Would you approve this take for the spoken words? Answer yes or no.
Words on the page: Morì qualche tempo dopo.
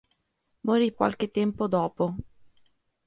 yes